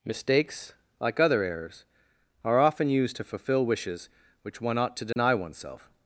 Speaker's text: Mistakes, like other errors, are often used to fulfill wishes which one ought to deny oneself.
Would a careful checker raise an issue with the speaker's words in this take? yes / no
no